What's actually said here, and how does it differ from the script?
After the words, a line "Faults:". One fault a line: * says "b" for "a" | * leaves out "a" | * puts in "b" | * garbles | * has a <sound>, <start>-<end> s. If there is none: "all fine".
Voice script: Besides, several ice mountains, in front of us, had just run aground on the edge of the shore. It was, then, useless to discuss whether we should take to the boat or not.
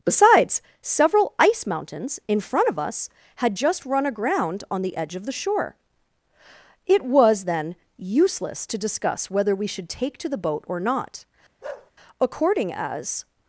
Besides, several ice mountains, in front of us, had just run aground on the edge of the shore. It was, then, useless to discuss whether we should take to the boat or not. According as
Faults:
* has a bark, 11.6-11.9 s
* puts in "According as"